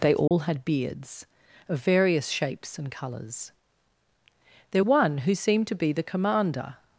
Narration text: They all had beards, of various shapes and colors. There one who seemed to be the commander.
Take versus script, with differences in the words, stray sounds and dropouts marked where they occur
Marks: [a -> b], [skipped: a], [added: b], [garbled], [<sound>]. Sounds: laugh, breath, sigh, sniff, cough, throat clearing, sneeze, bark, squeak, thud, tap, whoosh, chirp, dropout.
They all [dropout] had beards, of various shapes and colors. There one who seemed to be the commander.